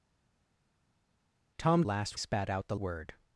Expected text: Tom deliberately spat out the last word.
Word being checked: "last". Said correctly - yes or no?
no